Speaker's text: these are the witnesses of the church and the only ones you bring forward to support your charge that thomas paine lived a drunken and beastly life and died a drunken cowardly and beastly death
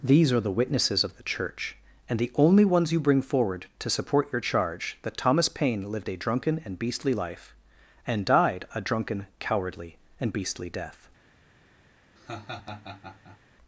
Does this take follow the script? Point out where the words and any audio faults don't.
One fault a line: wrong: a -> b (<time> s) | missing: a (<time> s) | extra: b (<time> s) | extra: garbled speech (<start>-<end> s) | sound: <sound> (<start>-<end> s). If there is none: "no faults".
sound: laugh (12.2-13.4 s)